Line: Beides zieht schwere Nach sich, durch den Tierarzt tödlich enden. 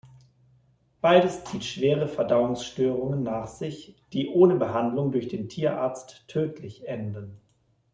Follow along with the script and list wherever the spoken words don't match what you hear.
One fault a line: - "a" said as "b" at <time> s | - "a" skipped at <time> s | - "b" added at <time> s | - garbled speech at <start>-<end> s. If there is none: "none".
- "Verdauungsstörungen" added at 2.1 s
- "die ohne Behandlung" added at 4.1 s